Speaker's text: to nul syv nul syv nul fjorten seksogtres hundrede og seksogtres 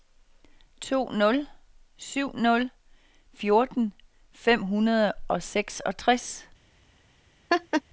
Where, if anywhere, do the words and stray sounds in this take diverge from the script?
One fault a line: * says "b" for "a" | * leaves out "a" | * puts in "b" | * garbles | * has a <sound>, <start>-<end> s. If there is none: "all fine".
* leaves out "syv nul"
* says "fem" for "seksogtres"
* has a laugh, 7.5-7.8 s